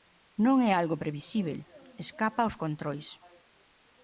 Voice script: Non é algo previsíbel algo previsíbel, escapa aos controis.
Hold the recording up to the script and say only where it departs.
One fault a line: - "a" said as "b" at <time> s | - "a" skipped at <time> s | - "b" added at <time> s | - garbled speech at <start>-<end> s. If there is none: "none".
- "algo previsíbel" skipped at 1.6 s